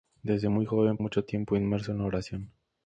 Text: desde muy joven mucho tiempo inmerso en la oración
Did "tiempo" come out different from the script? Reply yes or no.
no